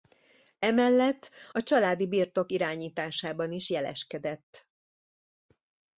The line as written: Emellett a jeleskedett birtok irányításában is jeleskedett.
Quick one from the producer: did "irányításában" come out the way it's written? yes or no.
yes